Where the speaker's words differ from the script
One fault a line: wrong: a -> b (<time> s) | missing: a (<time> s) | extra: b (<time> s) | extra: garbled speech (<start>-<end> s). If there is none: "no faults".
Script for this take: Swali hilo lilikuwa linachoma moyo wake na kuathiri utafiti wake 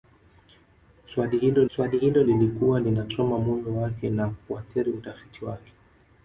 extra: swali hilo (1.7 s)